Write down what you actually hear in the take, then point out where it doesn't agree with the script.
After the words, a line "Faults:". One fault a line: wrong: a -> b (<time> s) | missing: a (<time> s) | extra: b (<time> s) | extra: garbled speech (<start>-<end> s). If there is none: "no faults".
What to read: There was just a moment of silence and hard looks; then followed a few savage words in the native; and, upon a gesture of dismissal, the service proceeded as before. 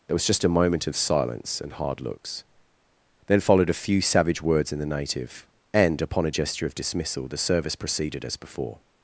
There was just a moment of silence and hard looks; then followed a few savage words in the native; and, upon a gesture of dismissal, the service proceeded as before.
Faults:
no faults